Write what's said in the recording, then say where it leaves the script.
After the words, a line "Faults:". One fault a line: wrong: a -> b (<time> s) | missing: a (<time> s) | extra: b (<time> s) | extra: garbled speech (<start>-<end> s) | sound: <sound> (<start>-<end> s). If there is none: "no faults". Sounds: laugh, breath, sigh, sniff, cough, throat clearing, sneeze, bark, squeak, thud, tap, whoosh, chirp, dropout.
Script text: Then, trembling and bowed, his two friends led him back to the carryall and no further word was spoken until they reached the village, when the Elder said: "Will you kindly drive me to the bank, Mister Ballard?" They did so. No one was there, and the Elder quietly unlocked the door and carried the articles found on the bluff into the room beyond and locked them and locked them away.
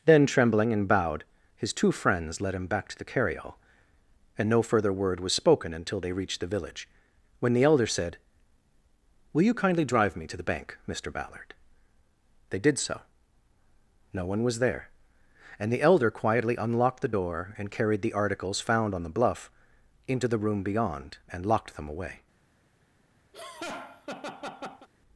Then, trembling and bowed, his two friends led him back to the carryall and no further word was spoken until they reached the village, when the Elder said: "Will you kindly drive me to the bank, Mister Ballard?" They did so. No one was there, and the Elder quietly unlocked the door and carried the articles found on the bluff into the room beyond and locked them away.
Faults:
missing: and locked them (21.9 s)
sound: laugh (23.3-24.9 s)